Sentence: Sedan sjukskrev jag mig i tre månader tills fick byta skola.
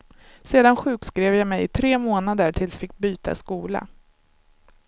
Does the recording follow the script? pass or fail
pass